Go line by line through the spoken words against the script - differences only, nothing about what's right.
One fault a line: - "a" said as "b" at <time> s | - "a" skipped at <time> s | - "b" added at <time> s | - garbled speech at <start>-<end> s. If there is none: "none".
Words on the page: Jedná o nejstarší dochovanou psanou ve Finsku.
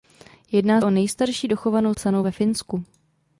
none